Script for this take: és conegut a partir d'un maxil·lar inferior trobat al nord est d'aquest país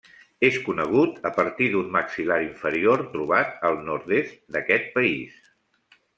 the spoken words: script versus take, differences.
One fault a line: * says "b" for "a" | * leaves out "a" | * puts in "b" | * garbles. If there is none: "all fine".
all fine